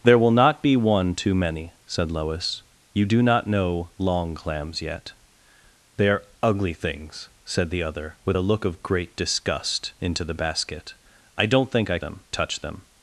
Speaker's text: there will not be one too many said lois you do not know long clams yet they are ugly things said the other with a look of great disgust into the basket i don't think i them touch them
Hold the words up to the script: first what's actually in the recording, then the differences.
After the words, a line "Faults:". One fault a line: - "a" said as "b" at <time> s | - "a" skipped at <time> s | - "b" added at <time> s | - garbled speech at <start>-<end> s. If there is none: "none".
there will not be one too many said lois you do not know long clams yet they are ugly things said the other with a look of great disgust into the basket i don't think i them touch them
Faults:
none